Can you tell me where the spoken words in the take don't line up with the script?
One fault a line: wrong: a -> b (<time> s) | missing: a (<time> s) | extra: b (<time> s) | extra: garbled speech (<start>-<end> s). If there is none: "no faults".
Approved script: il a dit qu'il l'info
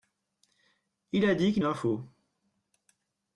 no faults